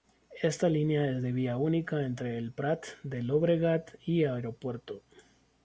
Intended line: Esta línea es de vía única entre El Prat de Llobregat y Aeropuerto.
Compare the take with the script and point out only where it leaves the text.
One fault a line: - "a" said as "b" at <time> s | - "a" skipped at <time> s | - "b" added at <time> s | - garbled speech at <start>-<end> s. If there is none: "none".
none